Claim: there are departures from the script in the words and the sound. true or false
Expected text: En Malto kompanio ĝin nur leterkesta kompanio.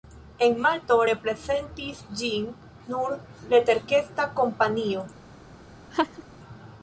true